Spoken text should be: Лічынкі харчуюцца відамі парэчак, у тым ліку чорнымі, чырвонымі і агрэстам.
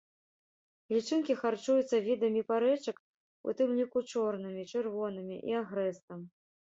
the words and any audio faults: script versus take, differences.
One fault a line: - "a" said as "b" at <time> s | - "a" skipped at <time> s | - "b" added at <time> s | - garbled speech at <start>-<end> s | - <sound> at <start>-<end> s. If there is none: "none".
none